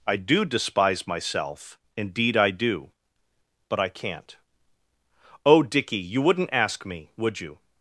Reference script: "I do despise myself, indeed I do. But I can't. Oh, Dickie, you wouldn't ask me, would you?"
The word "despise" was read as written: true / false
true